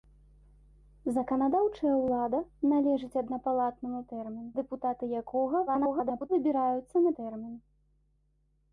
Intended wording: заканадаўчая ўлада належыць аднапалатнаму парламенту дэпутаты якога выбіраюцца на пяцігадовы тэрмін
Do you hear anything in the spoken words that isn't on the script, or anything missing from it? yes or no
yes